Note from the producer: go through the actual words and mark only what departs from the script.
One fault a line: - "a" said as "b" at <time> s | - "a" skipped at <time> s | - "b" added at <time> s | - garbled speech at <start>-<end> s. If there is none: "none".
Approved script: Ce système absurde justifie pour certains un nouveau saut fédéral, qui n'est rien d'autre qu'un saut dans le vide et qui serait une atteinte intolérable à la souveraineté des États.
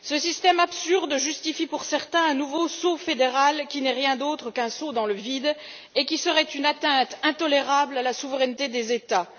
none